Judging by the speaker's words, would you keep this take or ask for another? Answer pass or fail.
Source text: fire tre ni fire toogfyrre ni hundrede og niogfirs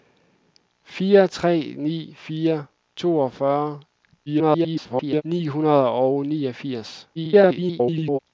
fail